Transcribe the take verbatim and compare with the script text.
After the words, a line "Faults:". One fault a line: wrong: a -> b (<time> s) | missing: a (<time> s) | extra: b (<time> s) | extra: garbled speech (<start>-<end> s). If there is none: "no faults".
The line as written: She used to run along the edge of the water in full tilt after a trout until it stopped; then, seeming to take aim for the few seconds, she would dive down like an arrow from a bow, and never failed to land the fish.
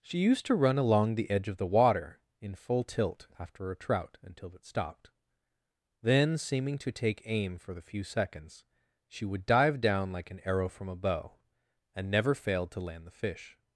She used to run along the edge of the water in full tilt after a trout until it stopped; then, seeming to take aim for the few seconds, she would dive down like an arrow from a bow, and never failed to land the fish.
Faults:
no faults